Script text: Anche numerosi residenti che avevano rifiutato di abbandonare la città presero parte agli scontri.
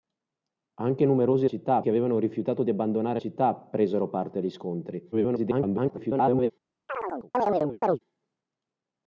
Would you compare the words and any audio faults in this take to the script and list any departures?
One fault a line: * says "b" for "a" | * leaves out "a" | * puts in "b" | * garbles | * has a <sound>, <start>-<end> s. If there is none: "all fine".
* says "città" for "residenti"
* leaves out "la"
* garbles
* has a chirp, 6.9-8.0 s